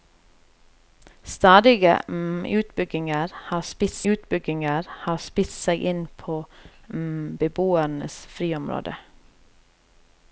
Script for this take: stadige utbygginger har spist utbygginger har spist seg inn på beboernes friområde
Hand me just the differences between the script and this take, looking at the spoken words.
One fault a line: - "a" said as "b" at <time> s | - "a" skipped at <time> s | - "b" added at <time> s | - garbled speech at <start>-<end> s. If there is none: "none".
none